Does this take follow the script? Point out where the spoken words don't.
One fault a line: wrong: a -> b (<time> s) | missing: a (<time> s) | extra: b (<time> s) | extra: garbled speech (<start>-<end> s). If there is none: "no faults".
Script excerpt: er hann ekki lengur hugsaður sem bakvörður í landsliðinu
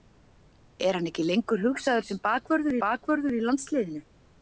extra: bakvörður (2.9 s)